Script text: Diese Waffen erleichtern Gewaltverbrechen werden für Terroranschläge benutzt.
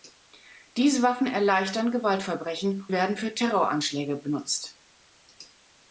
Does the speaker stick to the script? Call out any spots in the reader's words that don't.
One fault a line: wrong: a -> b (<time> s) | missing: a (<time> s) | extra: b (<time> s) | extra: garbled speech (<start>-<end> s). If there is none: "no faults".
no faults